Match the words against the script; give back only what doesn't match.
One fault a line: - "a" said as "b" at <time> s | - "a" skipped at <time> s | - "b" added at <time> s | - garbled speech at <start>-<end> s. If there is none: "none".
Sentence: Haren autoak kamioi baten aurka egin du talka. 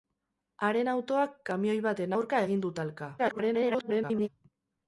- garbled speech at 3.2-4.3 s